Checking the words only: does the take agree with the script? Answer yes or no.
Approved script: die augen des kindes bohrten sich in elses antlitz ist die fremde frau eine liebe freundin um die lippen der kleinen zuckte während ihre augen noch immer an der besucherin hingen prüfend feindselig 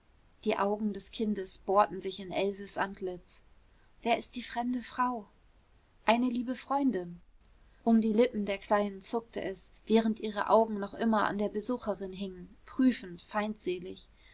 no